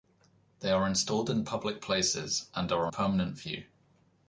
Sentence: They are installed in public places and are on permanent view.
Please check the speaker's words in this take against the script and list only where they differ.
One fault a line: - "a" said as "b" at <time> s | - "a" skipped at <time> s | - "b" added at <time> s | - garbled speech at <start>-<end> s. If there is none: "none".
- "on" skipped at 2.9 s